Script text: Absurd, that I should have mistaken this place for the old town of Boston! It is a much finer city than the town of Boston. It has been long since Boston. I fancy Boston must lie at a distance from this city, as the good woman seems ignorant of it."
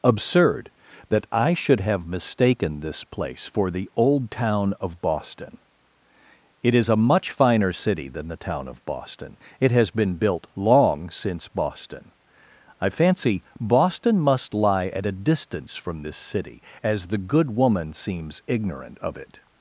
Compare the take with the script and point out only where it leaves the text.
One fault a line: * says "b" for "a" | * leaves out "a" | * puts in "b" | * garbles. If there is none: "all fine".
* puts in "built"